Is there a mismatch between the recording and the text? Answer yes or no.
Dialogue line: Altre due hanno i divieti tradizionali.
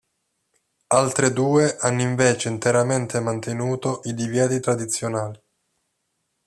yes